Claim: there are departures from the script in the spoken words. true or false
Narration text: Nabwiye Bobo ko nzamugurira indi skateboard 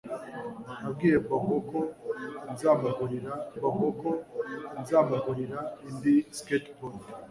true